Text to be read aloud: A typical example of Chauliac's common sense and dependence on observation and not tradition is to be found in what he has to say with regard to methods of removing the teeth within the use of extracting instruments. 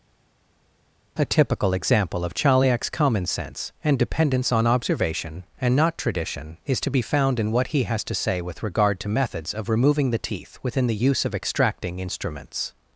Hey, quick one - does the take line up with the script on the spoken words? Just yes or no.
yes